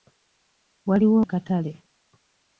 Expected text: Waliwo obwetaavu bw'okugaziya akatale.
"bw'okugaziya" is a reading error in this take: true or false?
true